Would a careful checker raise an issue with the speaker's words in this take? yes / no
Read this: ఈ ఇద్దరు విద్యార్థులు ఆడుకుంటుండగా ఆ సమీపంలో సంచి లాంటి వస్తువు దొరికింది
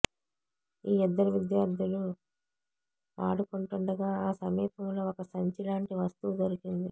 yes